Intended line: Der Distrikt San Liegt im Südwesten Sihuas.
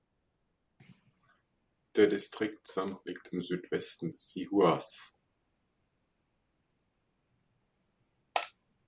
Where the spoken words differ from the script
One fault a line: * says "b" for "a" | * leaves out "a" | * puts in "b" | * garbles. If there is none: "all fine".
all fine